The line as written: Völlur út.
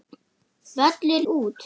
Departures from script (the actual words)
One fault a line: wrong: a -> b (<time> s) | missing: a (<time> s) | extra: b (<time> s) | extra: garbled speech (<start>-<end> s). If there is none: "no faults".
no faults